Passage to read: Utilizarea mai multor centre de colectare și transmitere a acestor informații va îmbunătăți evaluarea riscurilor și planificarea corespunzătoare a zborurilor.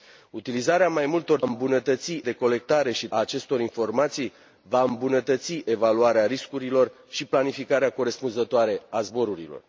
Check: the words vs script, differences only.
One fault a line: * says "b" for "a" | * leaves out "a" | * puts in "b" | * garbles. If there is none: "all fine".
* says "îmbunătăți" for "centre"
* leaves out "transmitere"